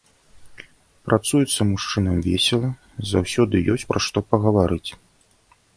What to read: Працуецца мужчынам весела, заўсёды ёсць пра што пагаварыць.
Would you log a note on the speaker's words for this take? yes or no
no